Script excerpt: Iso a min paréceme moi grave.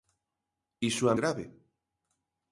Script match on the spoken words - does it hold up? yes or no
no